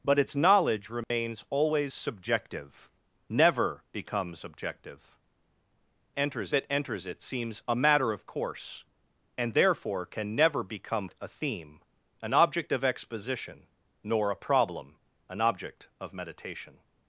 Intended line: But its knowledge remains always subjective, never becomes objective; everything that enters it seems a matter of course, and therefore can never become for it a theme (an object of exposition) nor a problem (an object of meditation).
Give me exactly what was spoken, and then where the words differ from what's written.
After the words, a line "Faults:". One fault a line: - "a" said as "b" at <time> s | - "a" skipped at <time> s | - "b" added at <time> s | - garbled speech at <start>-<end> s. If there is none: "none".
But its knowledge remains always subjective, never becomes objective; enters that enters it seems a matter of course, and therefore can never become it a theme (an object of exposition) nor a problem (an object of meditation).
Faults:
- "everything" said as "enters" at 6.2 s
- "for" skipped at 11.1 s